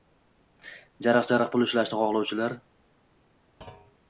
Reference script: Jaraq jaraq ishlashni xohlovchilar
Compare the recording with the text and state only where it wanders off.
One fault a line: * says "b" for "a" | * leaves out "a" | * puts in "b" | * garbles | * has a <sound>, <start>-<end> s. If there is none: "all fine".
* puts in "pul"
* has a thud, 3.6-4.0 s